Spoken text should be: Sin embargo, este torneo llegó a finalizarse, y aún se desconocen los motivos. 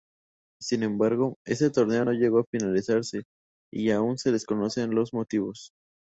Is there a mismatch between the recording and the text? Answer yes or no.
yes